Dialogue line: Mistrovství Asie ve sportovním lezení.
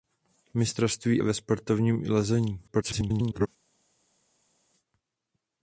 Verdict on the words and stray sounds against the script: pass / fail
fail